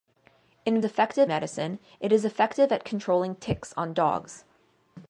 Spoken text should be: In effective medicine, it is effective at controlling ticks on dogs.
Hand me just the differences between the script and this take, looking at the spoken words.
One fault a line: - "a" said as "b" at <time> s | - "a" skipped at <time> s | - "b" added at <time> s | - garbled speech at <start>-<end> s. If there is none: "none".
none